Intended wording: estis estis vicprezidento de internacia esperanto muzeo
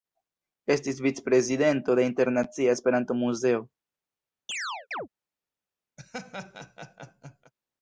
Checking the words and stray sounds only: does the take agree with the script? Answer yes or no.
no